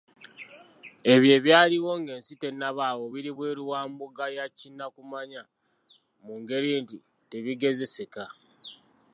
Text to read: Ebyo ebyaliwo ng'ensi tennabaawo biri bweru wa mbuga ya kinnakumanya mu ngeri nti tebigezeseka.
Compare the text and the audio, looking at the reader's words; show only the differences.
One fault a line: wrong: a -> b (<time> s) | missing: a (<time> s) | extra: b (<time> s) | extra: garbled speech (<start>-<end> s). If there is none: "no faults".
no faults